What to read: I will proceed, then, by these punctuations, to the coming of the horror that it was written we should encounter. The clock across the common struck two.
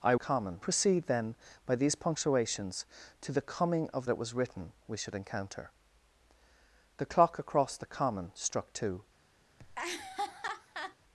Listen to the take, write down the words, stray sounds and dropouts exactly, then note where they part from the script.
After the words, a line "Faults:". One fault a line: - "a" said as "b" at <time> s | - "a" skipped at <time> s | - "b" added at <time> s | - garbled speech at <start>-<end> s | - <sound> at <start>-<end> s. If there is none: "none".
I common proceed, then, by these punctuations, to the coming of it was written we should encounter. The clock across the common struck two.
Faults:
- "will" said as "common" at 0.2 s
- "the horror that" skipped at 4.1 s
- laugh at 9.6-11.0 s